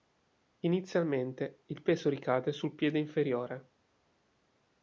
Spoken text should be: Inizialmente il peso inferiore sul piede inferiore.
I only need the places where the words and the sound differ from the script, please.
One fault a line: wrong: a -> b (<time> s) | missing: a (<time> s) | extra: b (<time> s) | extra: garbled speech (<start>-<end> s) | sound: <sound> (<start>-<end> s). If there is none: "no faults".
wrong: inferiore -> ricade (2.1 s)